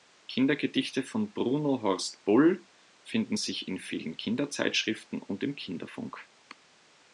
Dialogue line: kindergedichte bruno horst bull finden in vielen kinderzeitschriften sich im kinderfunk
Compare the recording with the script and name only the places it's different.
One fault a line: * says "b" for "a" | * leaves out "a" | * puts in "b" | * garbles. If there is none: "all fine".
* puts in "von"
* puts in "sich"
* says "und" for "sich"